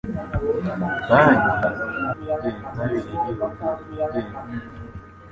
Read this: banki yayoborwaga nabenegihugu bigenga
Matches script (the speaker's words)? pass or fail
fail